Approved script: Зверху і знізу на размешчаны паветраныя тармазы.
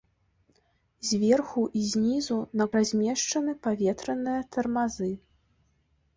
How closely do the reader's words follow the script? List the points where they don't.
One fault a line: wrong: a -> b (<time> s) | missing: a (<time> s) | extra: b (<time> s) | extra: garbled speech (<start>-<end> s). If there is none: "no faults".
no faults